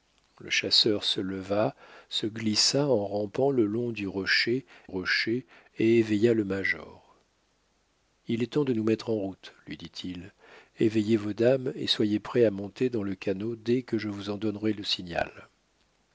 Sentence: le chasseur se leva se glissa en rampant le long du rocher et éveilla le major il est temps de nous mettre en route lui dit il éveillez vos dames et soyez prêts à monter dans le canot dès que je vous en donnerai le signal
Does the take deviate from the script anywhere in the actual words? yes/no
yes